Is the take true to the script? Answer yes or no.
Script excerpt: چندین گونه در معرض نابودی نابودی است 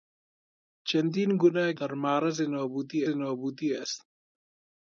yes